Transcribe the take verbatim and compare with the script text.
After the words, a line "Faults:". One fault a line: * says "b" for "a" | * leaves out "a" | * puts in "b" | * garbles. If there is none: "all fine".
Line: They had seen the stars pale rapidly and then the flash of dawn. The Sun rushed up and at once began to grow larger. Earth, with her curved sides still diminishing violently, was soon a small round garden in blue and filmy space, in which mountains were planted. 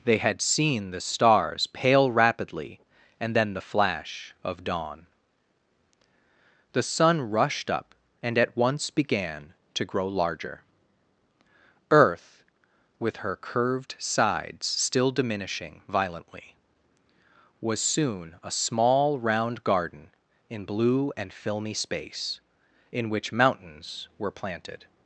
They had seen the stars pale rapidly and then the flash of dawn. The Sun rushed up and at once began to grow larger. Earth, with her curved sides still diminishing violently, was soon a small round garden in blue and filmy space, in which mountains were planted.
Faults:
all fine